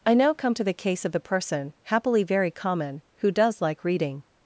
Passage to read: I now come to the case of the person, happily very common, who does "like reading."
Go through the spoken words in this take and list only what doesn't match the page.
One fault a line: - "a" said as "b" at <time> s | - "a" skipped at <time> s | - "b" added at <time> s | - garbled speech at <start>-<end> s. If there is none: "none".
none